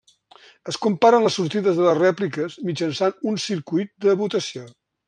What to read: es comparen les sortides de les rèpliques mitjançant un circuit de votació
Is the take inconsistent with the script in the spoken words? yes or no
no